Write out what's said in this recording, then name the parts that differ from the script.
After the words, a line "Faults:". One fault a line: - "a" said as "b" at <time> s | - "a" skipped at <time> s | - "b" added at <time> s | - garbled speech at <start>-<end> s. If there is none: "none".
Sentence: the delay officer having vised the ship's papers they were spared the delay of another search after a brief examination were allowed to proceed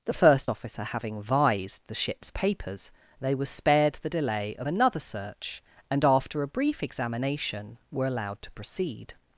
the first officer having vised the ship's papers they were spared the delay of another search and after a brief examination were allowed to proceed
Faults:
- "delay" said as "first" at 0.1 s
- "and" added at 5.9 s